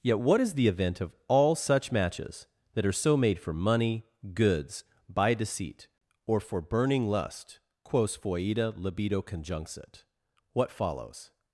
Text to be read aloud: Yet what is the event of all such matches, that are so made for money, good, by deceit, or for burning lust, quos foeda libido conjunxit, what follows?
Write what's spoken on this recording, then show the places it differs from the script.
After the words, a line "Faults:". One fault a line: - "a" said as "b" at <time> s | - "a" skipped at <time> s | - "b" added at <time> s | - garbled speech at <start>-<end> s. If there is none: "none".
Yet what is the event of all such matches, that are so made for money, goods, by deceit, or for burning lust, quos foeda libido conjunxit, what follows?
Faults:
- "good" said as "goods" at 4.3 s